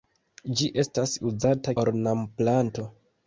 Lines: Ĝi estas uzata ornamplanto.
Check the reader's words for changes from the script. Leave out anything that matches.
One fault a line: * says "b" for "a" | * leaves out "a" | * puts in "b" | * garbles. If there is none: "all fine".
all fine